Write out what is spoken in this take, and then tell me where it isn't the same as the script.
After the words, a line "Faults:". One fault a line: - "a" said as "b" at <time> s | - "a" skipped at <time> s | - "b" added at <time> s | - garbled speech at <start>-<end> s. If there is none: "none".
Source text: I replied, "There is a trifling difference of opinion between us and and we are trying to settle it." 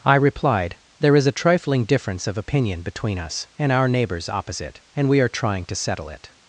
I replied, "There is a trifling difference of opinion between us and our neighbors opposite, and we are trying to settle it."
Faults:
- "our neighbors opposite" added at 3.7 s